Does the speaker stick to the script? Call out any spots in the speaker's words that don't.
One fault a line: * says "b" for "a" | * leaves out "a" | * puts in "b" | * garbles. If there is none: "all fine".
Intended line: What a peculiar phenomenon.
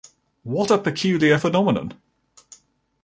all fine